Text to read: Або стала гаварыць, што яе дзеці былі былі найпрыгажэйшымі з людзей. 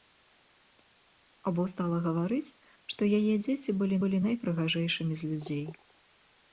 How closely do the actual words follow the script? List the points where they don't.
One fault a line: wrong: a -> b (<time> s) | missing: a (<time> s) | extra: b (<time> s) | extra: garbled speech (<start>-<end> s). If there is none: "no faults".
no faults